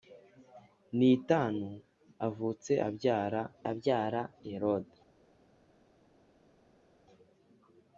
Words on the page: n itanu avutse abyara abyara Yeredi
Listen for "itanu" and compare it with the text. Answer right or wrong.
right